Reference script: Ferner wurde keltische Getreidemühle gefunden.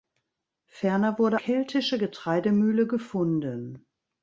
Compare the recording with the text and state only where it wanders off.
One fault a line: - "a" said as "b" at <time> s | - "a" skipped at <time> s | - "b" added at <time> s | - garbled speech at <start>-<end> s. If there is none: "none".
none